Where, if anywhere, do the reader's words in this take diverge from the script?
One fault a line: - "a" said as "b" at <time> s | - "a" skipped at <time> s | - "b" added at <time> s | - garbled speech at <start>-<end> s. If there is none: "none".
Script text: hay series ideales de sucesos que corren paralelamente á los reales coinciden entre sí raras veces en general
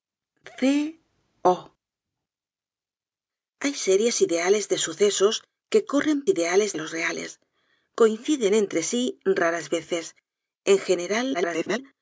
- "paralelamente" said as "ideales" at 6.3 s
- garbled speech at 11.3-11.8 s